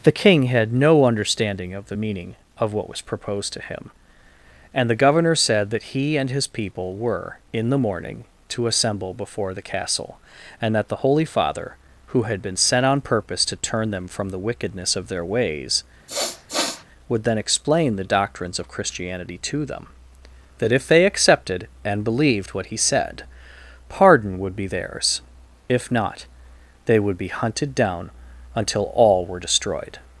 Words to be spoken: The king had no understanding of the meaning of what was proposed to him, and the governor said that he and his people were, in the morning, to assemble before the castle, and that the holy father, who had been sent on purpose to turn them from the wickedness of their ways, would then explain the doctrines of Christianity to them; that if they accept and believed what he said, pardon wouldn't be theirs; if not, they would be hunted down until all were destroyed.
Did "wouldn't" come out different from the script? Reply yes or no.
yes